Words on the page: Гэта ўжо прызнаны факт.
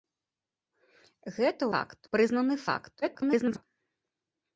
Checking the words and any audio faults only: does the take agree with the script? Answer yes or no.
no